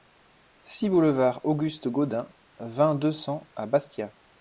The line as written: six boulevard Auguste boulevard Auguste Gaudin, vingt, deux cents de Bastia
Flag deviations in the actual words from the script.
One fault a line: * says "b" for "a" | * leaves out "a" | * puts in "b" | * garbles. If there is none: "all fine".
* leaves out "boulevard Auguste"
* says "à" for "de"